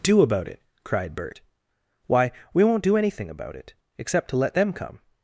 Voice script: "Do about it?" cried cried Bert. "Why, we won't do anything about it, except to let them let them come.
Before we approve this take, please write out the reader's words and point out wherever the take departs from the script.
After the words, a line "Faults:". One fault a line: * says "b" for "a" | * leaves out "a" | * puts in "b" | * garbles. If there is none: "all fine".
"Do about it?" cried Bert. "Why, we won't do anything about it, except to let them come.
Faults:
* leaves out "cried"
* leaves out "let them"